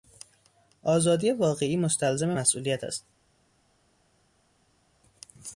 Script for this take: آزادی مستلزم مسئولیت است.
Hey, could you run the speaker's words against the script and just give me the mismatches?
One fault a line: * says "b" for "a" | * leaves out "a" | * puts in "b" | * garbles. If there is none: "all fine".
* puts in "واقعی"